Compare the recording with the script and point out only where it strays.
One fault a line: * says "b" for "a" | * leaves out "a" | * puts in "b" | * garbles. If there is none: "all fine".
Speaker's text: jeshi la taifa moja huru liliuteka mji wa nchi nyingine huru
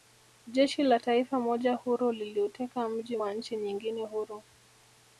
all fine